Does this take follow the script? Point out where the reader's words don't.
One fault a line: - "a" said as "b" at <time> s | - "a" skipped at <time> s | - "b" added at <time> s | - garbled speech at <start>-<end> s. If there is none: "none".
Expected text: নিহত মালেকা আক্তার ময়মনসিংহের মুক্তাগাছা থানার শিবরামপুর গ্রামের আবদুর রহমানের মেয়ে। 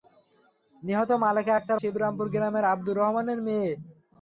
- "ময়মনসিংহের মুক্তাগাছা থানার" skipped at 1.8 s